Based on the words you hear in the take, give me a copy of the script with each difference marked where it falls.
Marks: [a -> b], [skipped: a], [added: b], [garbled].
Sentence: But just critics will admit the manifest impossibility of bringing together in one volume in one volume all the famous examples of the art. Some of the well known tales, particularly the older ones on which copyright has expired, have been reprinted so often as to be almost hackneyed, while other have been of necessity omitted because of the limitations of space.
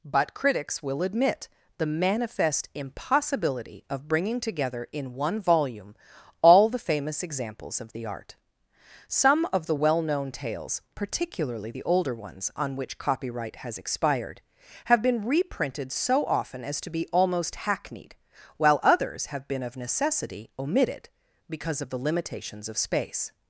But [skipped: just] critics will admit the manifest impossibility of bringing together in one volume [skipped: in one volume] all the famous examples of the art. Some of the well known tales, particularly the older ones on which copyright has expired, have been reprinted so often as to be almost hackneyed, while [other -> others] have been of necessity omitted because of the limitations of space.